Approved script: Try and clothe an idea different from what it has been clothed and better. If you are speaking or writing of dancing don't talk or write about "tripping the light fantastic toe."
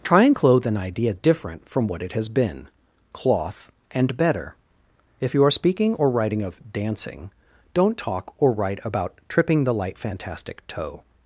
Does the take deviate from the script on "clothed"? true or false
true